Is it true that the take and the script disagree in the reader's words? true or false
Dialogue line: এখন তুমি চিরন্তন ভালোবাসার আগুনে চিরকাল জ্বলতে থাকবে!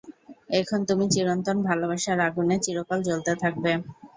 false